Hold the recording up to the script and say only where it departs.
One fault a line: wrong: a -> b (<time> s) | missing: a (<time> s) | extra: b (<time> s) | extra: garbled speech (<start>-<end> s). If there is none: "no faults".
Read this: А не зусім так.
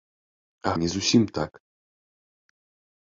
no faults